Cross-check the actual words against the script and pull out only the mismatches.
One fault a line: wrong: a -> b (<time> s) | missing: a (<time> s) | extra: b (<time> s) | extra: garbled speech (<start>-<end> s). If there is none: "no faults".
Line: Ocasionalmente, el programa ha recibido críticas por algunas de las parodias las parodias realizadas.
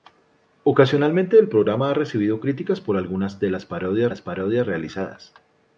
no faults